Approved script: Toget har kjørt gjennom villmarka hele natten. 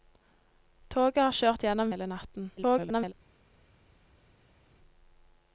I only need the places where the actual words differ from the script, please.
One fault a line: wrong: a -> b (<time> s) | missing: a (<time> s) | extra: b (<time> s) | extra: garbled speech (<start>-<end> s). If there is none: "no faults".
missing: villmarka (1.9 s)
extra: garbled speech (2.6-3.1 s)